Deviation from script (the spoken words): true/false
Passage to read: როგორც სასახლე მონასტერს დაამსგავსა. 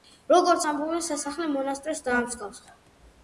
true